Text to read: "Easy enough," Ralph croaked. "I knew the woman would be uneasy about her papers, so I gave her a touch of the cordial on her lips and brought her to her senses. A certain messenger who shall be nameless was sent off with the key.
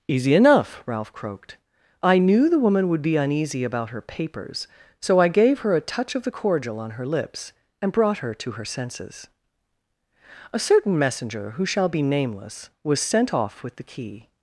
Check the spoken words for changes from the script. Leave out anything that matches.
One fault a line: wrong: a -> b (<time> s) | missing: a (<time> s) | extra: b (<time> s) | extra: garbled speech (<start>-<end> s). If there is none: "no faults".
no faults